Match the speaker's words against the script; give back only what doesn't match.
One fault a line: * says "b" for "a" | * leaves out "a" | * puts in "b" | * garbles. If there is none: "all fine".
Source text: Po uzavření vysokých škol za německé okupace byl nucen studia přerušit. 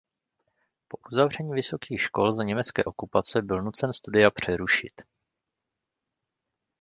all fine